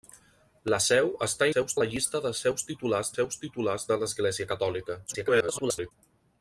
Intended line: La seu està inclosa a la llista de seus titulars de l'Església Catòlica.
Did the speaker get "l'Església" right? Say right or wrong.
right